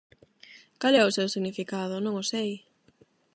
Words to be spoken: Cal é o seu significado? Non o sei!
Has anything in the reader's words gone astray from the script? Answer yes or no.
no